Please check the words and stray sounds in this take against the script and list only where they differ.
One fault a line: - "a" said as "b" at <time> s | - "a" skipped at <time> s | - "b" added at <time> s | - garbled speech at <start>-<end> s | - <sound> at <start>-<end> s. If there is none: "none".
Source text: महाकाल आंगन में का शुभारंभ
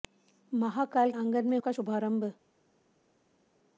none